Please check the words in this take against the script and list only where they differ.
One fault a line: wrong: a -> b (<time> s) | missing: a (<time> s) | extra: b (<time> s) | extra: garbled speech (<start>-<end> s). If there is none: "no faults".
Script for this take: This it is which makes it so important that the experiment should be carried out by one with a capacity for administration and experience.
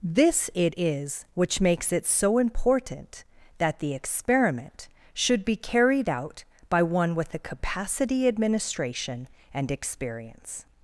missing: for (8.3 s)